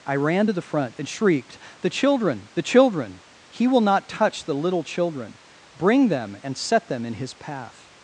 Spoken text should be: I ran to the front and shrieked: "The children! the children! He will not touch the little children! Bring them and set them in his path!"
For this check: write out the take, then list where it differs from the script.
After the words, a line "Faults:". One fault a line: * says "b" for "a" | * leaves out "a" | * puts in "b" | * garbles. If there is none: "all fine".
I ran to the front and shrieked: "The children! the children! He will not touch the little children! Bring them and set them in his path!"
Faults:
all fine